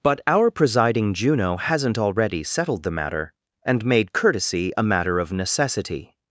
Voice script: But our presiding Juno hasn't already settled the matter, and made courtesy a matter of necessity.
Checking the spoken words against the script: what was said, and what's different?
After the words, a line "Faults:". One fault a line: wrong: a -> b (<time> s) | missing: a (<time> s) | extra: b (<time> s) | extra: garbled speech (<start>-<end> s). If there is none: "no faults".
But our presiding Juno hasn't already settled the matter, and made courtesy a matter of necessity.
Faults:
no faults